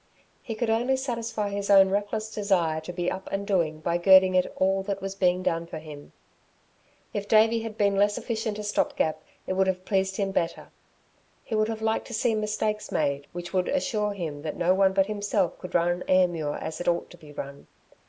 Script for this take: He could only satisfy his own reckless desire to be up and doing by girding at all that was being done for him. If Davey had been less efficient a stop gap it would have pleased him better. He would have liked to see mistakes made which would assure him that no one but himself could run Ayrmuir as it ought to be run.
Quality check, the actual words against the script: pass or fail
pass